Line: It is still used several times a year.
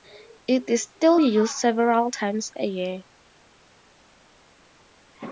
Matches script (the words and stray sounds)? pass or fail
pass